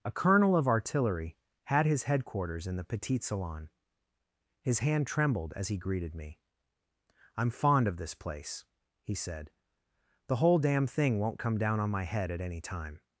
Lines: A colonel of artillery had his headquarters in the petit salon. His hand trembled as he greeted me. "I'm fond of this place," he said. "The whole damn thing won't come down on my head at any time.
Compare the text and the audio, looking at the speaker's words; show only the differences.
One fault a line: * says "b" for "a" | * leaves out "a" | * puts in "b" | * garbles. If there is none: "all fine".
all fine